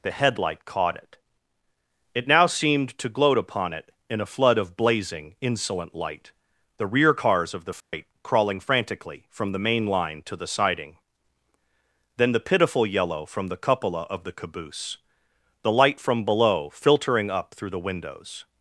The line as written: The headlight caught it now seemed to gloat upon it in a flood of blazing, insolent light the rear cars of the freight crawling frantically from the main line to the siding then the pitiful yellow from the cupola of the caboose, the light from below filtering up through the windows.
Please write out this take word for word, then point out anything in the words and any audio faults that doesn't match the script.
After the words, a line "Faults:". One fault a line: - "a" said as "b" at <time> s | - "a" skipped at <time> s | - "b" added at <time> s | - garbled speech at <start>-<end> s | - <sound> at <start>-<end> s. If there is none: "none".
The headlight caught it it now seemed to gloat upon it in a flood of blazing, insolent light the rear cars of the freight crawling frantically from the main line to the siding then the pitiful yellow from the cupola of the caboose, the light from below filtering up through the windows.
Faults:
- "it" added at 2.1 s
- dropout at 7.8-7.9 s